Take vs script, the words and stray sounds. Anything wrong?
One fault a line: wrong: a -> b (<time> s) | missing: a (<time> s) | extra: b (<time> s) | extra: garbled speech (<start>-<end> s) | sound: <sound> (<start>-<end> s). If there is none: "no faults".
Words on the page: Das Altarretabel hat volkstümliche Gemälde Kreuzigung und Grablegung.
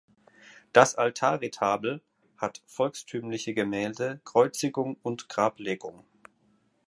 no faults